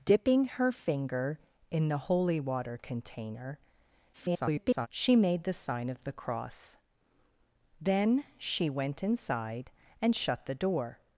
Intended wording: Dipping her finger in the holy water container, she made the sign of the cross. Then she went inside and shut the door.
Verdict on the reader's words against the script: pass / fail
fail